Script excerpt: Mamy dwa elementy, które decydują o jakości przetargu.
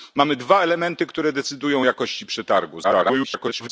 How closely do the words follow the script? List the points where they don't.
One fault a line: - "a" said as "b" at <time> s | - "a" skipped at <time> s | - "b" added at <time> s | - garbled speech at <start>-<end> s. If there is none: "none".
- garbled speech at 2.8-3.7 s